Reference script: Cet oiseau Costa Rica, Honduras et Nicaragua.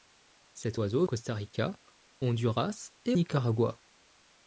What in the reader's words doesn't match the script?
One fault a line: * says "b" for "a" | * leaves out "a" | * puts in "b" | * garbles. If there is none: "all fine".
all fine